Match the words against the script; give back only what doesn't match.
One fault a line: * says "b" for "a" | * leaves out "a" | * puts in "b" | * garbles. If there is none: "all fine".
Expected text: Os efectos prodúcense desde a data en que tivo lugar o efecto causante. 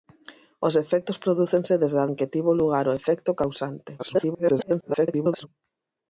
* leaves out "data"
* garbles